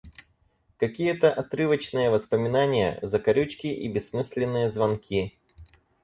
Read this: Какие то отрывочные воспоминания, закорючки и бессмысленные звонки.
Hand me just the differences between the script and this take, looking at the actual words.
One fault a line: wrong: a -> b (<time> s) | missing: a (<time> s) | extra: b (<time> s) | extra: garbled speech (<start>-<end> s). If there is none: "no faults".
no faults